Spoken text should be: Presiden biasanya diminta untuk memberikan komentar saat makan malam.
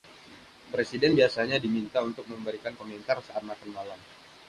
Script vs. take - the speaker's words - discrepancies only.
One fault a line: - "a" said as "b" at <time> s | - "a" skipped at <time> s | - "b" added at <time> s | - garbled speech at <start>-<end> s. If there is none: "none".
none